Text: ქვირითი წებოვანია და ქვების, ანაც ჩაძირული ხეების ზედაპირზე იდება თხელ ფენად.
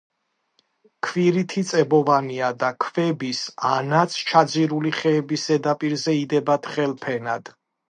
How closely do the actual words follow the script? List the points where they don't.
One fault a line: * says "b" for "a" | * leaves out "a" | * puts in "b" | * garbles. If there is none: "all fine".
all fine